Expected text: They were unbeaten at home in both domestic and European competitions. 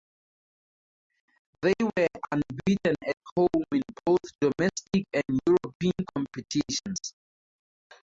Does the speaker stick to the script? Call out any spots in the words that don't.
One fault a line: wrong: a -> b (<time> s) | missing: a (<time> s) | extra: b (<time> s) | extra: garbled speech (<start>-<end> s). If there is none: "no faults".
no faults